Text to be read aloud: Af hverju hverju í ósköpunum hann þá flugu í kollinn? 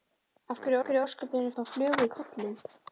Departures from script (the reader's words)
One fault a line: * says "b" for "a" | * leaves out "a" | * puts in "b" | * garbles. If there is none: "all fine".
all fine